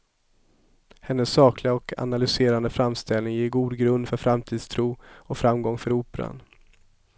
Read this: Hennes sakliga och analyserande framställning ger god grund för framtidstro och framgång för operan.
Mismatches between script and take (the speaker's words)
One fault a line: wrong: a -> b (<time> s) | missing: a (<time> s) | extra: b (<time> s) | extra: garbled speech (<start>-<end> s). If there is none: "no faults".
no faults